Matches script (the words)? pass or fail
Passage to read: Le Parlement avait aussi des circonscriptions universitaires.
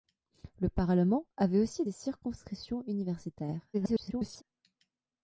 fail